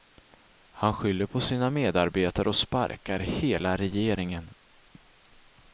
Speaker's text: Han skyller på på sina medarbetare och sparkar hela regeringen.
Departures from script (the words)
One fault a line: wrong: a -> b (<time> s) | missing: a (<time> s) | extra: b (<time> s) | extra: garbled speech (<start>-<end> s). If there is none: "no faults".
missing: på (1.4 s)